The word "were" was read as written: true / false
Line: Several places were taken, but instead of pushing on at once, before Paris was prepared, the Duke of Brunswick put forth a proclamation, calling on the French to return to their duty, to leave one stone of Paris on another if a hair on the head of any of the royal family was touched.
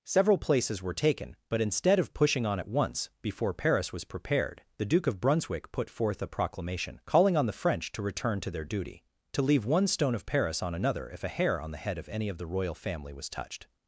true